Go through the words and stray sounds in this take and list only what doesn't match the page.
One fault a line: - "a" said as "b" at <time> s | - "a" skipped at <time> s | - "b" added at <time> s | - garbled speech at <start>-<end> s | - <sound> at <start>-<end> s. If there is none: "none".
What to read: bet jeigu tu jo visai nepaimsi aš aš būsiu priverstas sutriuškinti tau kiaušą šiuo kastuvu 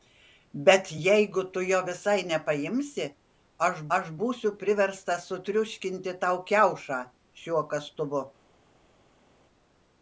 none